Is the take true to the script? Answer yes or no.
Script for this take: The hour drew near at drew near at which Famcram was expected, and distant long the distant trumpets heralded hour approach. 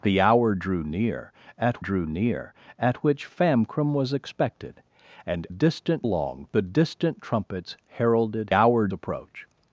yes